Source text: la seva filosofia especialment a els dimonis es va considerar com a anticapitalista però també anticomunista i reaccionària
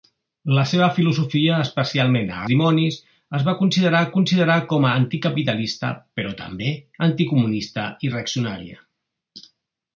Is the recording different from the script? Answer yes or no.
yes